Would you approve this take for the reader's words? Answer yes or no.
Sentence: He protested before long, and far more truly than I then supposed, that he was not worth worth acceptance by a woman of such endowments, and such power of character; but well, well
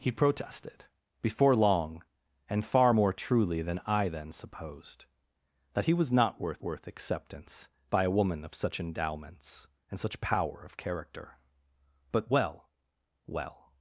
yes